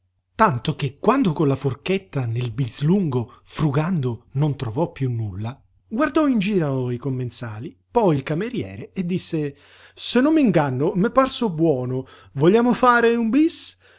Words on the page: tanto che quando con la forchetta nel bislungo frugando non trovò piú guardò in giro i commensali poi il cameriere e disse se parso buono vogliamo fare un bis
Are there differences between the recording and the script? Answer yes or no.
yes